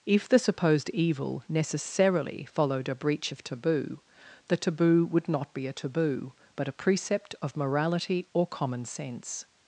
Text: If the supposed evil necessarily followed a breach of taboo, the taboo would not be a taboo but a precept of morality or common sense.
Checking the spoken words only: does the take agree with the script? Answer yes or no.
yes